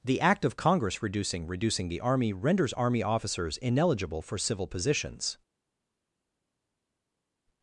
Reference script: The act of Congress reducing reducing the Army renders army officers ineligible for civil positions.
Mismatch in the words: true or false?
false